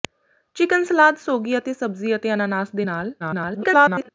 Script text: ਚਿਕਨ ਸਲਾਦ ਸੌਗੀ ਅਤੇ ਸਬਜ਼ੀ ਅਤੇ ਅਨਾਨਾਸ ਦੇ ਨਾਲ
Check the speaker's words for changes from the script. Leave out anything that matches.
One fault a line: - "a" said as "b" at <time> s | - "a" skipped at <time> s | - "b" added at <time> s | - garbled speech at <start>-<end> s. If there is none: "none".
- garbled speech at 3.2-4.1 s